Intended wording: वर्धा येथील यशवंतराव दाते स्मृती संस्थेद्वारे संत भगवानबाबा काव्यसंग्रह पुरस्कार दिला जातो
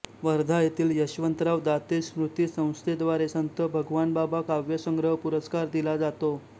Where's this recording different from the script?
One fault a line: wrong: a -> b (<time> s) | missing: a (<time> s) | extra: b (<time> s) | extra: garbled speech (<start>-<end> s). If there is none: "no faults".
no faults